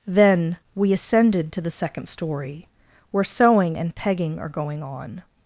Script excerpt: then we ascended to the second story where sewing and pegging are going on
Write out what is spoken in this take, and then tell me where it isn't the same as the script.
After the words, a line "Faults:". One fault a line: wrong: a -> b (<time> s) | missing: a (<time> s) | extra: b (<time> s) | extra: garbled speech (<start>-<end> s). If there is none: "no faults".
then we ascended to the second story where sewing and pegging are going on
Faults:
no faults